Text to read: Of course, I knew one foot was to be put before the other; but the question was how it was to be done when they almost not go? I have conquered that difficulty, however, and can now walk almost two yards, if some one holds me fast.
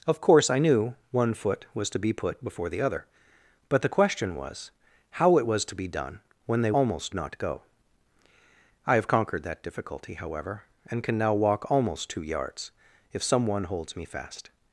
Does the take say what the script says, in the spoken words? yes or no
yes